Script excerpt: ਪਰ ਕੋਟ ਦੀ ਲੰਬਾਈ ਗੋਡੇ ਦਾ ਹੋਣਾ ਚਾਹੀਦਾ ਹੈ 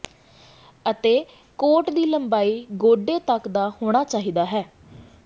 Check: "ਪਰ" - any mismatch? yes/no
yes